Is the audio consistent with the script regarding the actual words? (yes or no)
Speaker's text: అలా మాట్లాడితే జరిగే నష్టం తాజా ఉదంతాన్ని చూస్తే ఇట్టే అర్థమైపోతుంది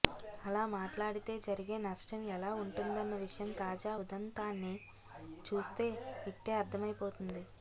no